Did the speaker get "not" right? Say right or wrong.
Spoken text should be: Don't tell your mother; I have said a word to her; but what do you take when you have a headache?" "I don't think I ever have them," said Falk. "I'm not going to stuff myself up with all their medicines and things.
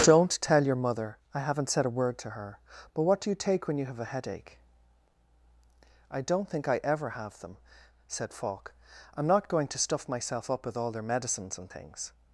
right